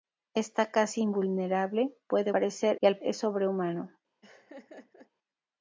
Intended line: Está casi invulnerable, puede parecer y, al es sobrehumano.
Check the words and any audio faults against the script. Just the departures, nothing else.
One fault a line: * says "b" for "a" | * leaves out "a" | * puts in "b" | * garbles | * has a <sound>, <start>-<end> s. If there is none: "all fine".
* has a laugh, 4.2-5.1 s